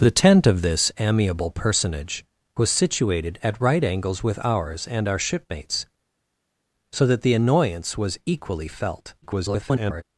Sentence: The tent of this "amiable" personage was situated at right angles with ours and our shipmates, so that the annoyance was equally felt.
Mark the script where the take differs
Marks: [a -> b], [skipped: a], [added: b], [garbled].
The tent of this "amiable" personage was situated at right angles with ours and our shipmates, so that the annoyance was equally felt. [garbled]